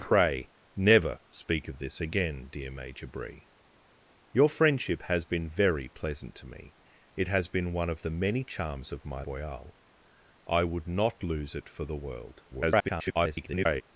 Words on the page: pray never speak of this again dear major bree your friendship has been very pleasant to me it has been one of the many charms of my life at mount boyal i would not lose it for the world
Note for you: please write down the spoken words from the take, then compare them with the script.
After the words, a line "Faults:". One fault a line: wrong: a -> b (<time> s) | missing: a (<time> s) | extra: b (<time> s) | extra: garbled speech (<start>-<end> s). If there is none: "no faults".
pray never speak of this again dear major bree your friendship has been very pleasant to me it has been one of the many charms of my boyal i would not lose it for the world [garbled]
Faults:
missing: life at mount (9.2 s)
extra: garbled speech (12.5-13.8 s)